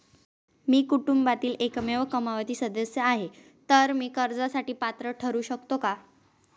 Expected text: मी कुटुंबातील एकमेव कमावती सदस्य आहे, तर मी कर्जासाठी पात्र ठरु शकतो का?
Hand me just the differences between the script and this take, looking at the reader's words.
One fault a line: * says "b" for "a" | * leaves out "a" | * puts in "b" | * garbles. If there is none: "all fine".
all fine